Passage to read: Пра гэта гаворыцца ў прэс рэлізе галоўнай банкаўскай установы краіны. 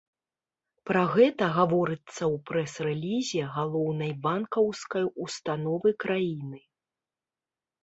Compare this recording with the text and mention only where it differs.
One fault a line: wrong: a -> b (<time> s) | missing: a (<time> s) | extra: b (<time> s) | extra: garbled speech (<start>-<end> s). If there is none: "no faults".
no faults